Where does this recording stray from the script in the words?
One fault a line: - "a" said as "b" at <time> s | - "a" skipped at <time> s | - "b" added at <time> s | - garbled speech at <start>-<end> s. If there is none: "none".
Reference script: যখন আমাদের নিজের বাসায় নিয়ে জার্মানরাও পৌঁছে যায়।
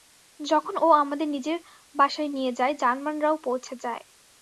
- "ও" added at 0.8 s
- "যায়" added at 2.5 s